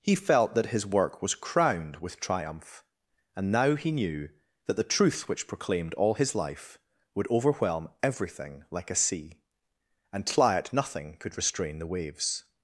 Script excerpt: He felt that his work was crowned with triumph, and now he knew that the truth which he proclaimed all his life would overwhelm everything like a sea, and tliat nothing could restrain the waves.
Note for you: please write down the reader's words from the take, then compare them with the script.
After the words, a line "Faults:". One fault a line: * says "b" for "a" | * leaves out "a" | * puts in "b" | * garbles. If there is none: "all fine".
He felt that his work was crowned with triumph, and now he knew that the truth which proclaimed all his life would overwhelm everything like a sea, and tliat nothing could restrain the waves.
Faults:
* leaves out "he"